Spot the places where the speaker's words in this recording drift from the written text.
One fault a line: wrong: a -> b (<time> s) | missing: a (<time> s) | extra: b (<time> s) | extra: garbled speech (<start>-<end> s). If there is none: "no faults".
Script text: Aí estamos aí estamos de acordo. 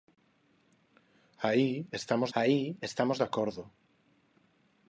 no faults